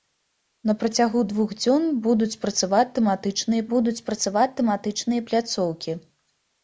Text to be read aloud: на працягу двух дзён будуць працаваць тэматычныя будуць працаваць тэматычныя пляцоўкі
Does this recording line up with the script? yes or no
yes